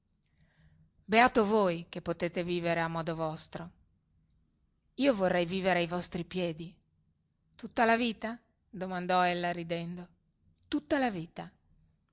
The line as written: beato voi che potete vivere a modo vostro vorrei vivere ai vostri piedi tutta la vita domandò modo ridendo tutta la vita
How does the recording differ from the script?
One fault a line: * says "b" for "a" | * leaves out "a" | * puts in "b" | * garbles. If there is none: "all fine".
* puts in "io"
* says "ella" for "modo"